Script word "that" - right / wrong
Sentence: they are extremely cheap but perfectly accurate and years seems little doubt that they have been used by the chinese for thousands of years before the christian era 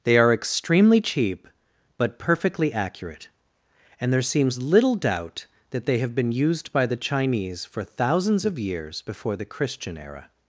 right